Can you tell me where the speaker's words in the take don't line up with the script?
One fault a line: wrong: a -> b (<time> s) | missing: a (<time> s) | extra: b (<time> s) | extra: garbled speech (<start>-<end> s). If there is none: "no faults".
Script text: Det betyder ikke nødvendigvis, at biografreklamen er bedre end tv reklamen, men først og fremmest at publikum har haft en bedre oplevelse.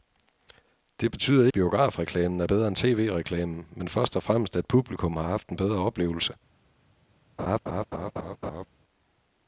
missing: ikke nødvendigvis at (1.5 s)